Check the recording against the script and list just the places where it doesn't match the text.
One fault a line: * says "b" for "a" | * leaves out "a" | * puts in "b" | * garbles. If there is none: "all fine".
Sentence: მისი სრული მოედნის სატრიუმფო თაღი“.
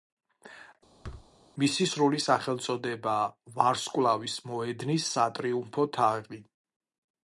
* puts in "სახელწოდებაა ვარსკვლავის"